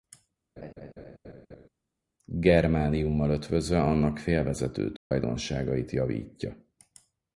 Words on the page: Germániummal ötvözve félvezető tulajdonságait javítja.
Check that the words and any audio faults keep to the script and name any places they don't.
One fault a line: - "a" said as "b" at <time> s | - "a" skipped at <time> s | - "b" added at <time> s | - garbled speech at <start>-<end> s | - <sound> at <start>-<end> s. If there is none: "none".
- laugh at 0.6-1.7 s
- "annak" added at 3.8 s
- dropout at 5.0-5.1 s